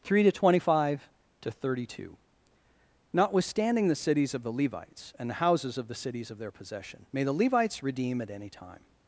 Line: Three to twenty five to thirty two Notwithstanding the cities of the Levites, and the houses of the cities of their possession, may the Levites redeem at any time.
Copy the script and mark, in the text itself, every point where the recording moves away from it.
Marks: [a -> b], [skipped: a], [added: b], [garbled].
Three to twenty five to thirty two Notwithstanding the cities of the Levites, and the houses of the cities of their possession, may the Levites redeem at any time.